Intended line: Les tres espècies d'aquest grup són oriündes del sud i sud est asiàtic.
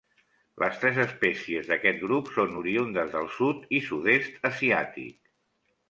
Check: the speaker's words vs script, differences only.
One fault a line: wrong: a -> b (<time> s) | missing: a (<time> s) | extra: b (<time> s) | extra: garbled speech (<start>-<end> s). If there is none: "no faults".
no faults